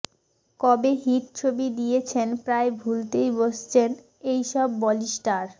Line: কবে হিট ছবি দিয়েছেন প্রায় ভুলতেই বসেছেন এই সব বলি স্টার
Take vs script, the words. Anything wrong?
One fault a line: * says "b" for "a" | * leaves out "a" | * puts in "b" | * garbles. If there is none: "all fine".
all fine